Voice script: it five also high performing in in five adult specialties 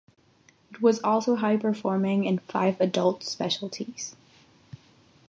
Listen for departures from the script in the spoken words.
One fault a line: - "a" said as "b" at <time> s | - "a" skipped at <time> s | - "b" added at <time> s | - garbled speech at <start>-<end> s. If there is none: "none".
- "five" said as "was" at 0.8 s
- "in" skipped at 2.4 s